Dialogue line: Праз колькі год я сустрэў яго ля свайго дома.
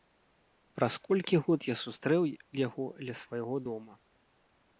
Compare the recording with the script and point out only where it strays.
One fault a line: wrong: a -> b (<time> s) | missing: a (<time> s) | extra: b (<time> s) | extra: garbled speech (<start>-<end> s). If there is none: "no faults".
no faults